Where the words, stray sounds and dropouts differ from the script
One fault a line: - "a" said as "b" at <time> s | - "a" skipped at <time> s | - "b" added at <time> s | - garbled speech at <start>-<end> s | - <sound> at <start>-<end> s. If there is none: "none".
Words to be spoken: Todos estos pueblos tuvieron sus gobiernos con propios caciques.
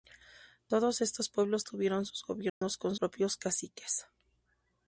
- dropout at 2.5-2.6 s